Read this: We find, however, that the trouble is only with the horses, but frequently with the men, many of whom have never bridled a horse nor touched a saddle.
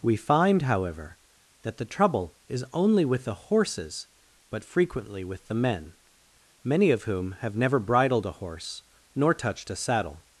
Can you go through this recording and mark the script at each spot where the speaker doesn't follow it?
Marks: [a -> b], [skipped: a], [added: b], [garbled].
We find, however, that the trouble is only with the horses, but frequently with the men, many of whom have never bridled a horse nor touched a saddle.